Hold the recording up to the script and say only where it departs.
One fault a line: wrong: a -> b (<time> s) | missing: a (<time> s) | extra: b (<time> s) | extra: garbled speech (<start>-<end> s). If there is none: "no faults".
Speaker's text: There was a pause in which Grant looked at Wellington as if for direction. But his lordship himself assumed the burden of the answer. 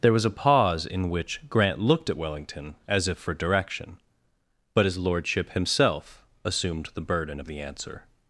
no faults